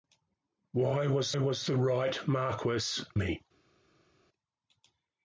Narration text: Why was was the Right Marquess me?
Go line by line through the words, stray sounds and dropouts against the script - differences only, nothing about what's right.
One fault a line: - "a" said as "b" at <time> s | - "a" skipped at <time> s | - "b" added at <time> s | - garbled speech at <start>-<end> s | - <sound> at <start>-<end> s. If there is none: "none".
none